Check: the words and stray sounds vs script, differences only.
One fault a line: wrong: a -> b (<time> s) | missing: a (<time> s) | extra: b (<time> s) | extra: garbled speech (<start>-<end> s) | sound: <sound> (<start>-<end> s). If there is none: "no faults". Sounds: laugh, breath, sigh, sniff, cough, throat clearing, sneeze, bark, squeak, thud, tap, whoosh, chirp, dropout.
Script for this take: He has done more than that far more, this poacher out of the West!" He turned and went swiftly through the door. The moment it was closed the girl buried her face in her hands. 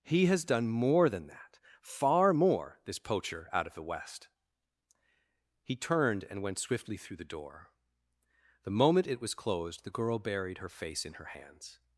no faults